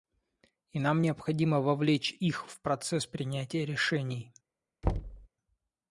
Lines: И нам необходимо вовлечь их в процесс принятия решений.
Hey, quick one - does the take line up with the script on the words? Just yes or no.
yes